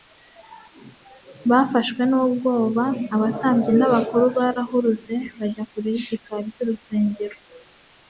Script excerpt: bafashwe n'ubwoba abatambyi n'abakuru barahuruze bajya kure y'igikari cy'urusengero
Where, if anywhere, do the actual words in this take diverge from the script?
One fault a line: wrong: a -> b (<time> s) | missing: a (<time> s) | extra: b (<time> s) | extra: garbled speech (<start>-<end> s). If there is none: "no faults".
no faults